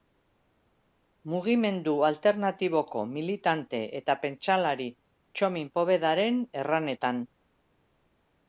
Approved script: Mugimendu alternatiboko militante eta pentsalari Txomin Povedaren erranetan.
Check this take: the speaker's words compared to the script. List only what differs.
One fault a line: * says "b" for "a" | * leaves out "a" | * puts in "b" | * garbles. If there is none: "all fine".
all fine